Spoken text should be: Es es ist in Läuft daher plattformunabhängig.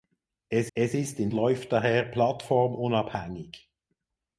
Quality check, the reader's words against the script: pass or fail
pass